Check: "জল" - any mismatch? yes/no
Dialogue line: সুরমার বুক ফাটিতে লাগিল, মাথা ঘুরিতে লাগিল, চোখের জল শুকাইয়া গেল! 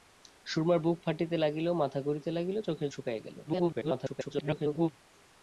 yes